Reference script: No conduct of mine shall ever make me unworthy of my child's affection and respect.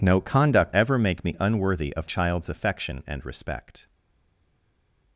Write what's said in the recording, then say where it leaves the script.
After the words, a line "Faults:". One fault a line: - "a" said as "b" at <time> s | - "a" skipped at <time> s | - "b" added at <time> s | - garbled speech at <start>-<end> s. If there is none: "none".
No conduct ever make me unworthy of child's affection and respect.
Faults:
- "of mine shall" skipped at 0.8 s
- "my" skipped at 2.1 s